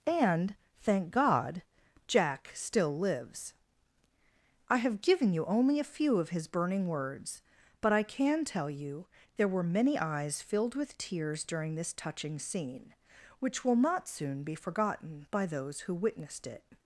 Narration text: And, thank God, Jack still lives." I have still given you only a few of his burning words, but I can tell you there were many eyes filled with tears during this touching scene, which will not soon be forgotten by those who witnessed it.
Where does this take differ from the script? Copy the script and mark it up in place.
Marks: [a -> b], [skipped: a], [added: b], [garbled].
And, thank God, Jack still lives." I have [skipped: still] given you only a few of his burning words, but I can tell you there were many eyes filled with tears during this touching scene, which will not soon be forgotten by those who witnessed it.